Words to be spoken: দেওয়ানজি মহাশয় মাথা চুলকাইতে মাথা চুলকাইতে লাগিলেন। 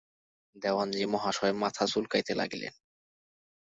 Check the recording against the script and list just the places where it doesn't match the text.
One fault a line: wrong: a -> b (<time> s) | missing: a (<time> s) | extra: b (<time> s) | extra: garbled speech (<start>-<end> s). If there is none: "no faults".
missing: মাথা চুলকাইতে (2.3 s)